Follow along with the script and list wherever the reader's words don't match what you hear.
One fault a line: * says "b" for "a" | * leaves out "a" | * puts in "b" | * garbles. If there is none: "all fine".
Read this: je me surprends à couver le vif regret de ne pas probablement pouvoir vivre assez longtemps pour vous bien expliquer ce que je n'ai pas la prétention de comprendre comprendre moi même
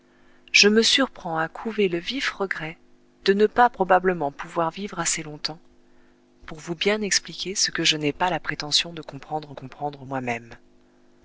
all fine